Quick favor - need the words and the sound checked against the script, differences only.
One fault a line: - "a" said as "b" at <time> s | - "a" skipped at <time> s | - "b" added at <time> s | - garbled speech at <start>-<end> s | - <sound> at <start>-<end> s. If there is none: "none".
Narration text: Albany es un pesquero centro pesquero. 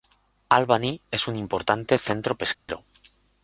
- "pesquero" said as "importante" at 1.4 s
- dropout at 2.5-2.7 s